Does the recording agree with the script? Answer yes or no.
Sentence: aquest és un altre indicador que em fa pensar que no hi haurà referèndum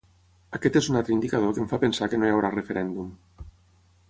yes